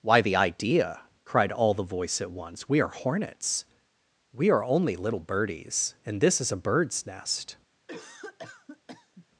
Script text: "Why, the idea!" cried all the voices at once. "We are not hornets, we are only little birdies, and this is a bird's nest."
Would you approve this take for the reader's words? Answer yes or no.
no